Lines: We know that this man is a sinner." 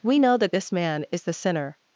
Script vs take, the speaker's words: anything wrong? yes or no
yes